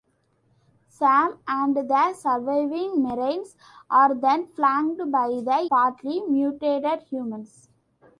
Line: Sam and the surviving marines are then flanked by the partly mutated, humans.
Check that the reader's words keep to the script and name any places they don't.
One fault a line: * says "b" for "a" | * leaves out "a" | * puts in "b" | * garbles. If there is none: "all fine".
all fine